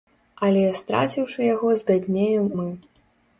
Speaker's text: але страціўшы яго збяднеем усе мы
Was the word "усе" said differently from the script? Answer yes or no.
yes